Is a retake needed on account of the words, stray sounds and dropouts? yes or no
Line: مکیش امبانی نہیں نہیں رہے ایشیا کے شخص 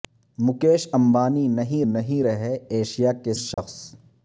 yes